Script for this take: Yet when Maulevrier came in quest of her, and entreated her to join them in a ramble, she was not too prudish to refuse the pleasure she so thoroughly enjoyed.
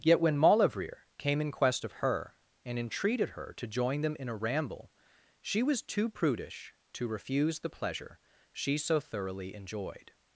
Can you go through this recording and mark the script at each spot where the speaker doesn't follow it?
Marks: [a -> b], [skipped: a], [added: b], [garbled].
Yet when Maulevrier came in quest of her, and entreated her to join them in a ramble, she was [skipped: not] too prudish to refuse the pleasure she so thoroughly enjoyed.